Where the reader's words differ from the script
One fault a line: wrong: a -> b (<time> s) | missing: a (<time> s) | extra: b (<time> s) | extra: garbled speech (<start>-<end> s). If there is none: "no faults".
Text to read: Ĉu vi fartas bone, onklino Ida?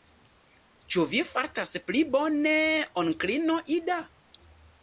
extra: pli (1.9 s)